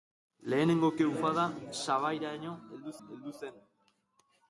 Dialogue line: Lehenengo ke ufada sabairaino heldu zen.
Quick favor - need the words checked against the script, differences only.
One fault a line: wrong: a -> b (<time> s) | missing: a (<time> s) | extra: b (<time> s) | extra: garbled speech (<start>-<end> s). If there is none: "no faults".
extra: heldu (3.1 s)